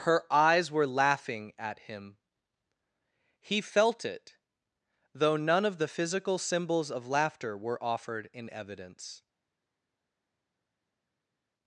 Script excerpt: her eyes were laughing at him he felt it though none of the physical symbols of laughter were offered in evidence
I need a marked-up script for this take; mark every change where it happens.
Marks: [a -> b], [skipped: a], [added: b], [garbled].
her eyes were laughing at him he felt it though none of the physical symbols of laughter were offered in evidence